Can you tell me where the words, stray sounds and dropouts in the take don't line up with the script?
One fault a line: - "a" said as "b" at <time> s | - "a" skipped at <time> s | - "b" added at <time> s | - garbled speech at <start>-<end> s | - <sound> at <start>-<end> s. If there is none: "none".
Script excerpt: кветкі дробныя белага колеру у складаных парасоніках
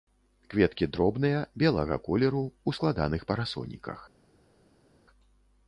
none